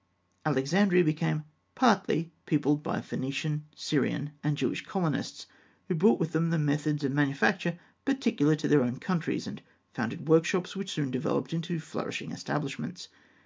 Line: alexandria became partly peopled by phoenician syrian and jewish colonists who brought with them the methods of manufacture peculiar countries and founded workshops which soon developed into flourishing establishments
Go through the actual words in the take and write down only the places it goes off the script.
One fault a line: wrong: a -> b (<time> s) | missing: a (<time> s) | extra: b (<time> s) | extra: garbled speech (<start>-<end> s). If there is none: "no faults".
extra: to their own (8.6 s)